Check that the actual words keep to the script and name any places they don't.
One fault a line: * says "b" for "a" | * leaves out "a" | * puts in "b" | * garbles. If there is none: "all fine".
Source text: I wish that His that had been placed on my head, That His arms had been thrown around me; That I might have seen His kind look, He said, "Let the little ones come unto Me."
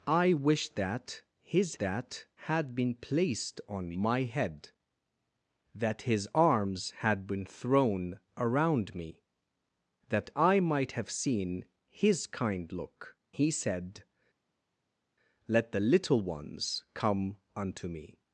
all fine